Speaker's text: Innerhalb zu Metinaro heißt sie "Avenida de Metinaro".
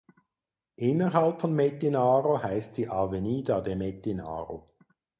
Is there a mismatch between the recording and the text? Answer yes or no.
yes